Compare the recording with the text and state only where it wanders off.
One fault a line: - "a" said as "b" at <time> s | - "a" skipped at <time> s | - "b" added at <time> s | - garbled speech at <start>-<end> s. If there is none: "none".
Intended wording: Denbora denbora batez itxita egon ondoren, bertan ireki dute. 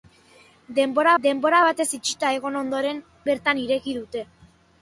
none